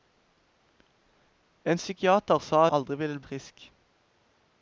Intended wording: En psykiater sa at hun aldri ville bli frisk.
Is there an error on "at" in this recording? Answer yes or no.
yes